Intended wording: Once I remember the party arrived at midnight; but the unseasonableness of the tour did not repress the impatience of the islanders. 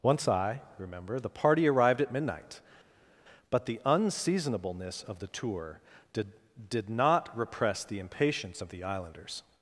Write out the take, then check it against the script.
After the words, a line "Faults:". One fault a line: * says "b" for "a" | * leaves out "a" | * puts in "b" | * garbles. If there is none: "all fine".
Once I remember the party arrived at midnight; but the unseasonableness of the tour did did not repress the impatience of the islanders.
Faults:
* puts in "did"